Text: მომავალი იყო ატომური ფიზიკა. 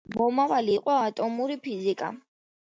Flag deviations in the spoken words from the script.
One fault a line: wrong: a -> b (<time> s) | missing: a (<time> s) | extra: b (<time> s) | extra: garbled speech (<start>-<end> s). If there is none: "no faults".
no faults